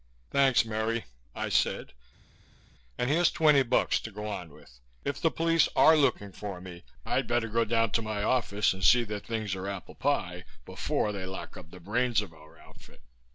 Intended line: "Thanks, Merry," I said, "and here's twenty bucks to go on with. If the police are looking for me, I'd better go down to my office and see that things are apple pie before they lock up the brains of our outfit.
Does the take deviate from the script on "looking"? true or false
false